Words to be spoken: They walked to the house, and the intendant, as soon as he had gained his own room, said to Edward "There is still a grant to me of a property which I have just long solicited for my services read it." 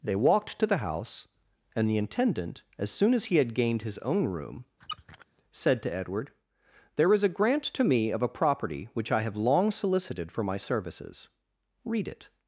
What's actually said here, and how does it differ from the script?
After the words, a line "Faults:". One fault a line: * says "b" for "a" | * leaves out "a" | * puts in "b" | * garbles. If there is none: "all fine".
They walked to the house, and the intendant, as soon as he had gained his own room, said to Edward "There is a grant to me of a property which I have long solicited for my services read it."
Faults:
* leaves out "still"
* leaves out "just"